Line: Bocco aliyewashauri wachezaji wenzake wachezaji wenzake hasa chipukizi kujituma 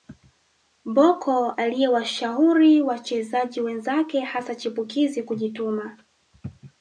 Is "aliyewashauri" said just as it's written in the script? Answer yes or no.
yes